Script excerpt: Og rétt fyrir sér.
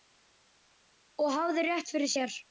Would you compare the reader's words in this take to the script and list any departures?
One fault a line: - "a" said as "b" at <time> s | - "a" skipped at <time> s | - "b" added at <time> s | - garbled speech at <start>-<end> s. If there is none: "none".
- "hafði" added at 1.4 s